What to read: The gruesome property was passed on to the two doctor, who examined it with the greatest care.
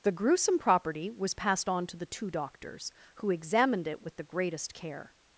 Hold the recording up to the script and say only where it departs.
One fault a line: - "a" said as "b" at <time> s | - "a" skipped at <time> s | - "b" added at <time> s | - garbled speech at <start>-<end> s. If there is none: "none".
- "doctor" said as "doctors" at 2.3 s